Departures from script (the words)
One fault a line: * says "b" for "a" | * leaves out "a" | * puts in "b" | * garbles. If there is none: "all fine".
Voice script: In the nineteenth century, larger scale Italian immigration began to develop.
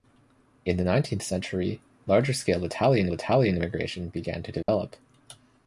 * puts in "Italian"